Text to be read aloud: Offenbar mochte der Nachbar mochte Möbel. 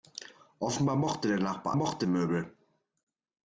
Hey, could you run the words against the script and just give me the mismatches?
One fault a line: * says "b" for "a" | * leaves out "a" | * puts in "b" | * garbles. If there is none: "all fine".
all fine